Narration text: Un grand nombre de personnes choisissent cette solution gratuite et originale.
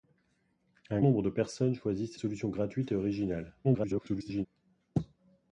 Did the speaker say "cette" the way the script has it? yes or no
no